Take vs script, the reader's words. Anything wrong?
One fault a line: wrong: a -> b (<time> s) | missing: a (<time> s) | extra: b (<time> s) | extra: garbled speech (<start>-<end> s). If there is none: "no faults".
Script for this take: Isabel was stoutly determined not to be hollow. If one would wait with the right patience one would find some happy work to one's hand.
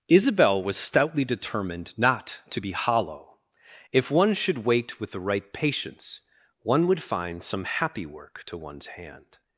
wrong: would -> should (4.3 s)